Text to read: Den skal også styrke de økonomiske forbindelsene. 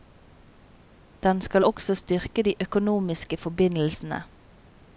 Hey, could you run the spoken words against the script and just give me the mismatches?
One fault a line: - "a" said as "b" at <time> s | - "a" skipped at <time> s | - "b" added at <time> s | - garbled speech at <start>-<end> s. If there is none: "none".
none